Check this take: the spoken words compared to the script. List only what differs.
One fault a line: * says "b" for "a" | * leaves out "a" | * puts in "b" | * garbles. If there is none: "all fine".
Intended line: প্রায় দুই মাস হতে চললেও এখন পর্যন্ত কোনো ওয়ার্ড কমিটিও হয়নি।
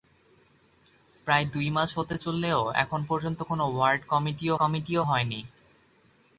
* puts in "কমিটিও"